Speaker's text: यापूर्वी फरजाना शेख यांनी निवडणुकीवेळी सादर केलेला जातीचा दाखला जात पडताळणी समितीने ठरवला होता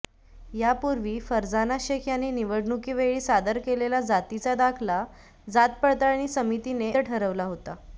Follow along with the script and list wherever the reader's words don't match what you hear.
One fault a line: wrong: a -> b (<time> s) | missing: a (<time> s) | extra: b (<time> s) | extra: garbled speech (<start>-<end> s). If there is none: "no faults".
no faults